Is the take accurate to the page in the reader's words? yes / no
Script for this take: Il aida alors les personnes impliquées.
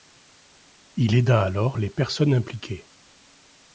yes